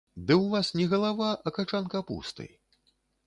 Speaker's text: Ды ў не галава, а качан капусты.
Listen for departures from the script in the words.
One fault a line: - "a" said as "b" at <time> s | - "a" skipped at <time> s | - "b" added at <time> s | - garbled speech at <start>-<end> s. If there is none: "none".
- "вас" added at 0.5 s